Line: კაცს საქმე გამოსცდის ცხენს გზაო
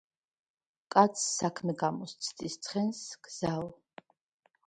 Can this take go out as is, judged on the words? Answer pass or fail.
pass